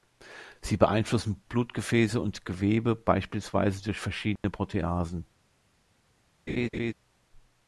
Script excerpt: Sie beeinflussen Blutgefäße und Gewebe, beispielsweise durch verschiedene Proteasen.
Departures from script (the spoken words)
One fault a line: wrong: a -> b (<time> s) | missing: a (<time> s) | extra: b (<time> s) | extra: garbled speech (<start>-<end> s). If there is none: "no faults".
no faults